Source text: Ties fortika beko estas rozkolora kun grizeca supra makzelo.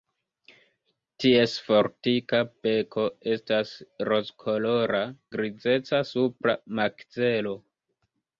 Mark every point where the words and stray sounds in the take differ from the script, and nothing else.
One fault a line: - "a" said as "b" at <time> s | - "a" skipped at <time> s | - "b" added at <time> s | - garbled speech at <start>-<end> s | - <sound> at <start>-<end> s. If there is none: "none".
- "kun" skipped at 5.0 s